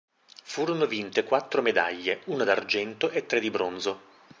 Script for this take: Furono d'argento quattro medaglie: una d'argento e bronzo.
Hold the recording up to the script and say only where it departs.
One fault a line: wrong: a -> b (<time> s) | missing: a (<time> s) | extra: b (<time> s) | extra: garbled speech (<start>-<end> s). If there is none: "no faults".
wrong: d'argento -> vinte (0.9 s)
extra: tre di (3.3 s)